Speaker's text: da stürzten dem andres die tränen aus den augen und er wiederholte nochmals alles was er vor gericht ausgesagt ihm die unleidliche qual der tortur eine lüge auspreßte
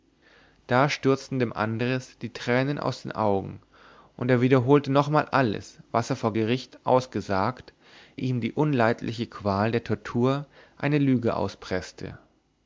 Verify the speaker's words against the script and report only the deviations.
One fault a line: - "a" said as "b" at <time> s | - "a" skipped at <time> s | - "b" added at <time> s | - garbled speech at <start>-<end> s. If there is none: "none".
none